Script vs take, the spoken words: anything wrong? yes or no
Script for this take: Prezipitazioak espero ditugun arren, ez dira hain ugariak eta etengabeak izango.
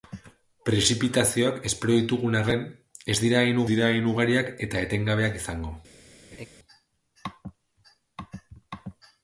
yes